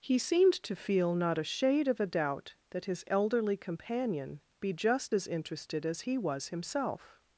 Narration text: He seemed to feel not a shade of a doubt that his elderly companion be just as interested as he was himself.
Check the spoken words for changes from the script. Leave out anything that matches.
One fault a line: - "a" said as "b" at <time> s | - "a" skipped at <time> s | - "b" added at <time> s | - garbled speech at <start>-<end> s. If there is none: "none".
none